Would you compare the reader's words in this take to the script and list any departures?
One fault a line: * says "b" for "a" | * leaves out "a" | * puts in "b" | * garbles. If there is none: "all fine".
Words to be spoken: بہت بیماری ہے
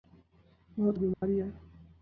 all fine